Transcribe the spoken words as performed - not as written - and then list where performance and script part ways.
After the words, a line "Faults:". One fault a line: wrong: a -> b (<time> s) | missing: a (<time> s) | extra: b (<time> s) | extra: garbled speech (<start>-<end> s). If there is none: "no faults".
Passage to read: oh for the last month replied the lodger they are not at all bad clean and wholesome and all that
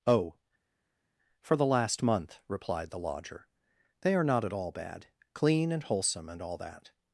oh for the last month replied the lodger they are not at all bad clean and wholesome and all that
Faults:
no faults